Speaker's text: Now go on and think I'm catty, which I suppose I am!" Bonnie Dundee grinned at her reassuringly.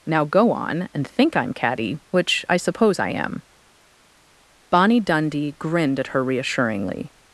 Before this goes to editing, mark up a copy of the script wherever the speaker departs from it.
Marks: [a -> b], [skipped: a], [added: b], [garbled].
Now go on and think I'm catty, which I suppose I am!" Bonnie Dundee grinned at her reassuringly.